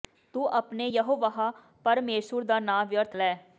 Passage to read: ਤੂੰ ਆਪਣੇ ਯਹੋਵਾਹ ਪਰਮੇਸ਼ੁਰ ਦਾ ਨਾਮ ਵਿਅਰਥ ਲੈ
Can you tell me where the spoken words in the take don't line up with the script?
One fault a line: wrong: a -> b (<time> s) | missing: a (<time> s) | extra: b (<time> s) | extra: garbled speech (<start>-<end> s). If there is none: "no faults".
no faults